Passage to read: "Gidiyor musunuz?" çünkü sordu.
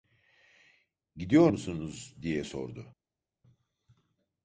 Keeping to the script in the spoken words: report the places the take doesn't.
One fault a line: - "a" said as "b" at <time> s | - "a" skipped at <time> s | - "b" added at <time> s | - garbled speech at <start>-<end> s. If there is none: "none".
- "çünkü" said as "diye" at 2.2 s